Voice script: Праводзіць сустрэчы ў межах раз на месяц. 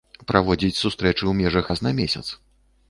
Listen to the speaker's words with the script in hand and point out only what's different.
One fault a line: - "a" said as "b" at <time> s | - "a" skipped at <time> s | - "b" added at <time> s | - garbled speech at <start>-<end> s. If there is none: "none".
none